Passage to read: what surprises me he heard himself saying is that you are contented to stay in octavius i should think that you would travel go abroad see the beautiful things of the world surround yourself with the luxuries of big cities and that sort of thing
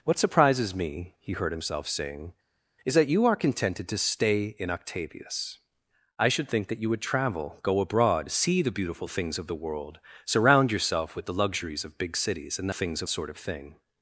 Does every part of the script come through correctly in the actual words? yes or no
no